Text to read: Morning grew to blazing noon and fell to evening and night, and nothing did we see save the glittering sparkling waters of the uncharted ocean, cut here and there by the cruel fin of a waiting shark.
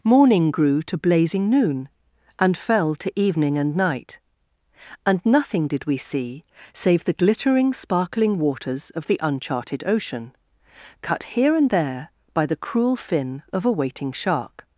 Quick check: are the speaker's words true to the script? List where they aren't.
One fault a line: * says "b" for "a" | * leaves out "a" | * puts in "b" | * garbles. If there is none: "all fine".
all fine